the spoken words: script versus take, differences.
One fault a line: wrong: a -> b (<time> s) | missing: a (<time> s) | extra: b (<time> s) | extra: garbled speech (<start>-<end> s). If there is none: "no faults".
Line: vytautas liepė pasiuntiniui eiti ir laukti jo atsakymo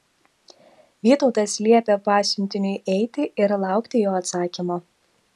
no faults